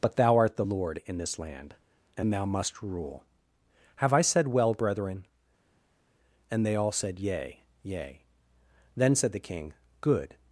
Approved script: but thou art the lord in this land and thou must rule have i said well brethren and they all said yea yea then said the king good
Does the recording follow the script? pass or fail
pass